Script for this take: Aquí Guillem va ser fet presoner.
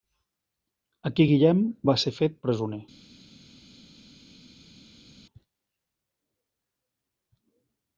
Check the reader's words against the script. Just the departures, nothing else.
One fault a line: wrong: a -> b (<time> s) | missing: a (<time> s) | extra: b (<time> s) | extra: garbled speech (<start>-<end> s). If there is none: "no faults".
no faults